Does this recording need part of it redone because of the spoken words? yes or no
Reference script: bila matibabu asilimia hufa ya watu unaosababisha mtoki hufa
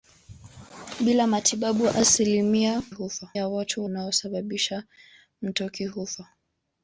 no